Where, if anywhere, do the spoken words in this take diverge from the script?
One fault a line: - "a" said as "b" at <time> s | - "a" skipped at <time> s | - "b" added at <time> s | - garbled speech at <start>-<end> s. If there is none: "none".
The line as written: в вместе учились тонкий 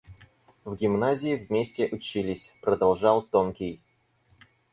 - "гимназии" added at 0.8 s
- "продолжал" added at 2.6 s